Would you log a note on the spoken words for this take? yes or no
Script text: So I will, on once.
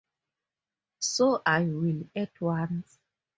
yes